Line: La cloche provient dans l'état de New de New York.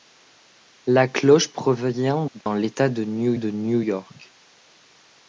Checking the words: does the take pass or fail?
pass